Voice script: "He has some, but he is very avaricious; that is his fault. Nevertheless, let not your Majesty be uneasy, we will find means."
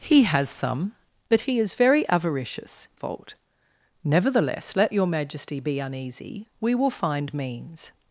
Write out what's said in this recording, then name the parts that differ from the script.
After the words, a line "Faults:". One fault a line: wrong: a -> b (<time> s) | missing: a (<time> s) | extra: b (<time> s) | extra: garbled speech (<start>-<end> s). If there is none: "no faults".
"He has some, but he is very avaricious; fault. Nevertheless, let your Majesty be uneasy, we will find means."
Faults:
missing: that is his (2.9 s)
missing: not (4.9 s)